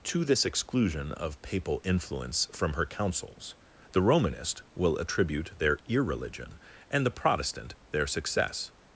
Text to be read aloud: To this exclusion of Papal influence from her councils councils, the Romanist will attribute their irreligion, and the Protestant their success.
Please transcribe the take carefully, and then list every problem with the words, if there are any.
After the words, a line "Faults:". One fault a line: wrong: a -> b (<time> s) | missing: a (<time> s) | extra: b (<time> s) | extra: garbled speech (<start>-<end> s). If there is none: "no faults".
To this exclusion of Papal influence from her councils, the Romanist will attribute their irreligion, and the Protestant their success.
Faults:
missing: councils (3.5 s)